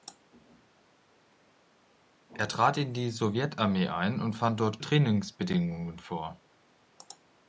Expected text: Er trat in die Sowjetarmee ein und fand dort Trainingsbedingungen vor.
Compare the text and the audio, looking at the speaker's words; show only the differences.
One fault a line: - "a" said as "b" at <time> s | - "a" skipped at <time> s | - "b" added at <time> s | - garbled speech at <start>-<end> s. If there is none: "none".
none